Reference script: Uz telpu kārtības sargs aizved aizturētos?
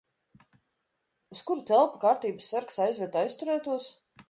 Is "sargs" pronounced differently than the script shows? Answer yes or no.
no